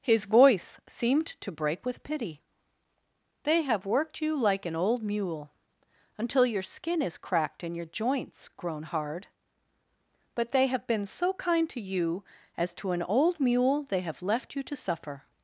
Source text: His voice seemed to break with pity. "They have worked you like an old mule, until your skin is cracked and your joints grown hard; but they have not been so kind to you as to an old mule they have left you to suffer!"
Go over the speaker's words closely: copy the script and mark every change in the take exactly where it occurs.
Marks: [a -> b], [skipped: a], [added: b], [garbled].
His voice seemed to break with pity. "They have worked you like an old mule, until your skin is cracked and your joints grown hard; but they have [skipped: not] been so kind to you as to an old mule they have left you to suffer!"